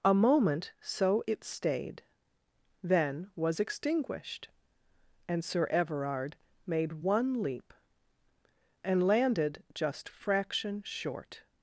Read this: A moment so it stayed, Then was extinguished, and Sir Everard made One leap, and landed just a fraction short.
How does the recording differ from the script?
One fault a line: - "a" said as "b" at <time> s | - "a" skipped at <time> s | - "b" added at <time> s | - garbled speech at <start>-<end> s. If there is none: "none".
- "a" skipped at 10.1 s